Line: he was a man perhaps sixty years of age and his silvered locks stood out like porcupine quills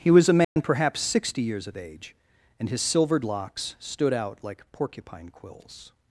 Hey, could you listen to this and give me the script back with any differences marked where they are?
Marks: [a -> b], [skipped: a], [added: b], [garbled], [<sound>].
he was a man [dropout] perhaps sixty years of age and his silvered locks stood out like porcupine quills